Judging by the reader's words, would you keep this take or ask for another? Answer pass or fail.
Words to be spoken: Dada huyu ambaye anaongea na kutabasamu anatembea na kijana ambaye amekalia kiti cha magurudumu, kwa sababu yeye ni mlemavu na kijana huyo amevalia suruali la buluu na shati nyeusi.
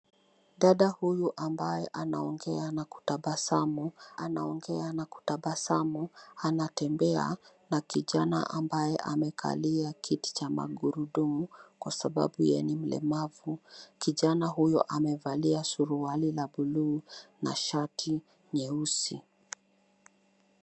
fail